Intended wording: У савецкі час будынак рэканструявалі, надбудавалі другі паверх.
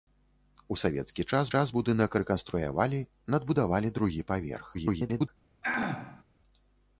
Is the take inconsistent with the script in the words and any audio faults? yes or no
yes